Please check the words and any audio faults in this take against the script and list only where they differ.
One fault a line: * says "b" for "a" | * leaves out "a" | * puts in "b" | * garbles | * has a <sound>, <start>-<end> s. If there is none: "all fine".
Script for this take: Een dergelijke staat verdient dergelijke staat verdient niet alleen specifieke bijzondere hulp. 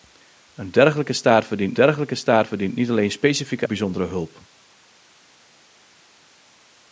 all fine